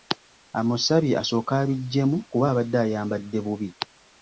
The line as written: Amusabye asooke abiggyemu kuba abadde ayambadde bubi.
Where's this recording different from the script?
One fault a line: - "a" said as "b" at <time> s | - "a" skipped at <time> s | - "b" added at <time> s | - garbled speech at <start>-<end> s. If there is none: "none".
none